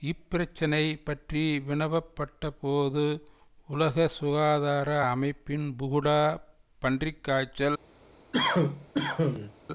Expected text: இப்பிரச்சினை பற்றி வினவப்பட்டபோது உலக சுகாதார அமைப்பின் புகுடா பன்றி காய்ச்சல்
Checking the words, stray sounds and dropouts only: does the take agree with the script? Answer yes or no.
no